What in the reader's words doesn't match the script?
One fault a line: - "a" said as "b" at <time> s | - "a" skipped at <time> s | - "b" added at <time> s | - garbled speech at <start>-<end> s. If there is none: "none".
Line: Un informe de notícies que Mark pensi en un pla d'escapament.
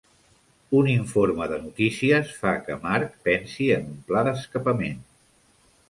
- "fa" added at 2.4 s